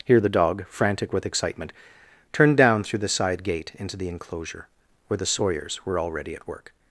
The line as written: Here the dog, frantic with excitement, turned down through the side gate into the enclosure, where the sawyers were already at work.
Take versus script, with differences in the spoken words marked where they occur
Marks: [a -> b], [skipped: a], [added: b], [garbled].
Here the dog, frantic with excitement, turned down through the side gate into the enclosure, where the sawyers were already at work.